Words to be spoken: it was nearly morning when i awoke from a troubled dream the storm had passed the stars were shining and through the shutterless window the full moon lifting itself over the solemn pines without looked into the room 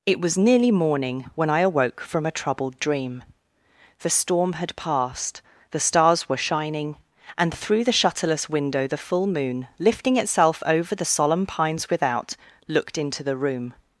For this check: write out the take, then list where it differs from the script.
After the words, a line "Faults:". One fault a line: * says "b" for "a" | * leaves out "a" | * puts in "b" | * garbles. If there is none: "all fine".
it was nearly morning when i awoke from a troubled dream the storm had passed the stars were shining and through the shutterless window the full moon lifting itself over the solemn pines without looked into the room
Faults:
all fine